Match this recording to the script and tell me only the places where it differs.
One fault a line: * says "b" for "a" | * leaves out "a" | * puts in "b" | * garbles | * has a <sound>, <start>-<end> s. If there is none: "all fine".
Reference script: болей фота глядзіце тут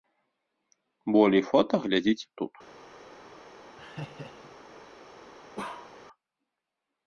* has a laugh, 3.8-4.6 s
* has a bark, 5.6-5.9 s